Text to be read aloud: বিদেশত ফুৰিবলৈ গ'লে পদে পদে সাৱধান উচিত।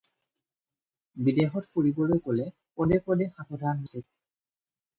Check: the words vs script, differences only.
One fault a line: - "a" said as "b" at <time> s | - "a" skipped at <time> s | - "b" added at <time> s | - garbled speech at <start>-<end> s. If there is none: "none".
none